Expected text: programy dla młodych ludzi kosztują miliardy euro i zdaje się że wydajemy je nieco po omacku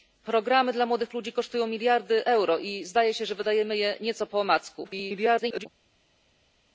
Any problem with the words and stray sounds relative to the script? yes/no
yes